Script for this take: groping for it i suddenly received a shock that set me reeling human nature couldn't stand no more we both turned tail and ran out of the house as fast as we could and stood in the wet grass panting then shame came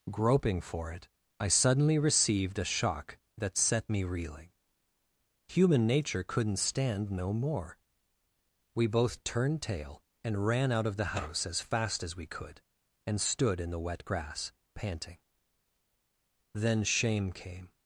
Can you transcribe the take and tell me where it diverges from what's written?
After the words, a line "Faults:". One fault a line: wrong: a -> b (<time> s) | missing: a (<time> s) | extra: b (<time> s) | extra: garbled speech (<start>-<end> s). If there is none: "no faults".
groping for it i suddenly received a shock that set me reeling human nature couldn't stand no more we both turned tail and ran out of the house as fast as we could and stood in the wet grass panting then shame came
Faults:
no faults